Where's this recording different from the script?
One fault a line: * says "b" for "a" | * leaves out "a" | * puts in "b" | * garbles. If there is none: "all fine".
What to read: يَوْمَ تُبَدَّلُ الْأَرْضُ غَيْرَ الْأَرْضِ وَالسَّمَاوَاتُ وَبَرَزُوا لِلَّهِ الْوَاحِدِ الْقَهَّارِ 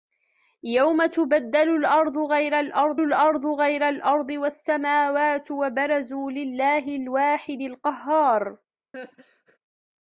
* puts in "الْأَرْضُ غَيْرَ الْأَرْضِ"